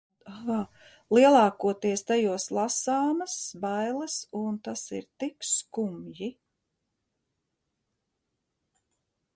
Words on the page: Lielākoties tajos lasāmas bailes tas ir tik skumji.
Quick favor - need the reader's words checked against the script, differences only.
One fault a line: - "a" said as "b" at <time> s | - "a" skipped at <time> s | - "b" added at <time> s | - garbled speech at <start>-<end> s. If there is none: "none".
- "un" added at 4.4 s